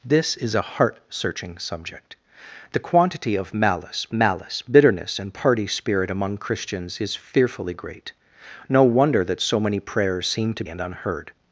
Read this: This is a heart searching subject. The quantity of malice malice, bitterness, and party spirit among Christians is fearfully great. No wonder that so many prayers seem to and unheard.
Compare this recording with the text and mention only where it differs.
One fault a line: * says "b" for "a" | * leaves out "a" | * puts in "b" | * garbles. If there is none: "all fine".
all fine